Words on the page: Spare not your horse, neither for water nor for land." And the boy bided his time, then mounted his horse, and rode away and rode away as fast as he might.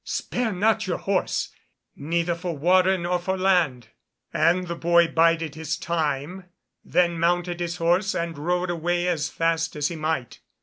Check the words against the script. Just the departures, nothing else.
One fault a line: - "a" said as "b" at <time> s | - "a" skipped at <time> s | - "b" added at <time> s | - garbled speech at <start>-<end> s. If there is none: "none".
- "and rode away" skipped at 9.1 s